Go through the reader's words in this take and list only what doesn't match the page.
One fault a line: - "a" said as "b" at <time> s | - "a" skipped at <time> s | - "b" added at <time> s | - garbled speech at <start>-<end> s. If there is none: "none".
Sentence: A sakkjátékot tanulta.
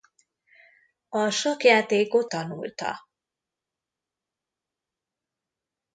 none